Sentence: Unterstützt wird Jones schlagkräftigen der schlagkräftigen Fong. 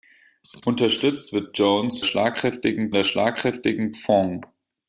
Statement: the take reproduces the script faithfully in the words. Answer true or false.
true